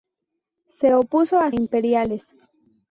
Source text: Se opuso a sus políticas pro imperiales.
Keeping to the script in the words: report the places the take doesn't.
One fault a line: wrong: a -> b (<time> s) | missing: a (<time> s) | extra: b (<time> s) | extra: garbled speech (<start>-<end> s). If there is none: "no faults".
missing: sus políticas pro (1.5 s)